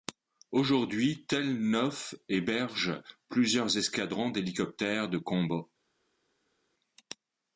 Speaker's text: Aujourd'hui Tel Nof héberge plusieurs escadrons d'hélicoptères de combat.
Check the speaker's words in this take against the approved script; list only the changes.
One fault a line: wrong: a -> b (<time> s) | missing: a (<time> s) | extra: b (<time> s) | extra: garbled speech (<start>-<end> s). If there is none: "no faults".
no faults